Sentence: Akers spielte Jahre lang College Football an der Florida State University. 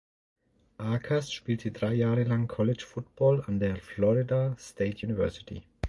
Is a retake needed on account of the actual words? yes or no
yes